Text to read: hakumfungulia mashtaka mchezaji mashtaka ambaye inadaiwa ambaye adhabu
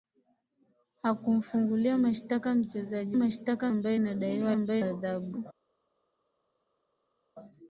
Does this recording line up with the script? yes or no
yes